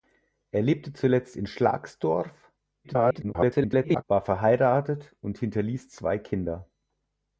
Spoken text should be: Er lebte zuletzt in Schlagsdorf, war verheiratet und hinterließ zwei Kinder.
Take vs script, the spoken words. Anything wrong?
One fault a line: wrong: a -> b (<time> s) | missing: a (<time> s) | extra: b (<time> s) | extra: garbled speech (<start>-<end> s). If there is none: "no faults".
extra: garbled speech (2.8-4.0 s)